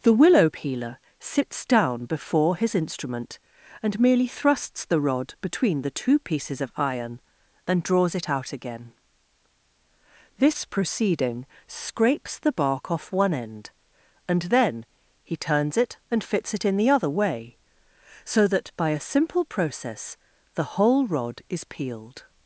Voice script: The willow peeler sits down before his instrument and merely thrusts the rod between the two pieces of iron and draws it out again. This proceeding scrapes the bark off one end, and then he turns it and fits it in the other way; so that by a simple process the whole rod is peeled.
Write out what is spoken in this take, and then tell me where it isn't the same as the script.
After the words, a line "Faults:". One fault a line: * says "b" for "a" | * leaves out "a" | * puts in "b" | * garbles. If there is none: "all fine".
The willow peeler sits down before his instrument and merely thrusts the rod between the two pieces of iron and draws it out again. This proceeding scrapes the bark off one end, and then he turns it and fits it in the other way; so that by a simple process the whole rod is peeled.
Faults:
all fine